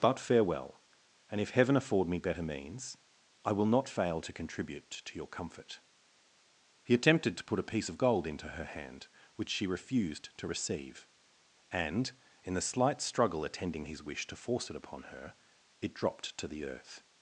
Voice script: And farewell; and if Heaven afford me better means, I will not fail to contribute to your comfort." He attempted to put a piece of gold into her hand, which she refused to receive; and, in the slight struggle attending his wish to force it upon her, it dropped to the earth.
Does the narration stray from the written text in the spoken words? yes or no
yes